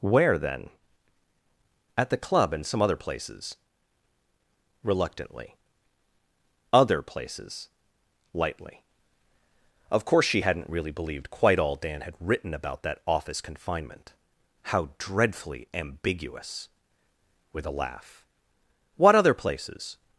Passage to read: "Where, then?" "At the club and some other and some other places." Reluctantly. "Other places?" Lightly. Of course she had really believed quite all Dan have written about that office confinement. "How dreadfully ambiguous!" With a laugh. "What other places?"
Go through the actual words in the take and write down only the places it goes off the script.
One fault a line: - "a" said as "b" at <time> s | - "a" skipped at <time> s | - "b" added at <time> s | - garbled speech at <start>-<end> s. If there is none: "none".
- "and some other" skipped at 3.0 s
- "had" said as "hadn't" at 10.4 s
- "have" said as "had" at 12.0 s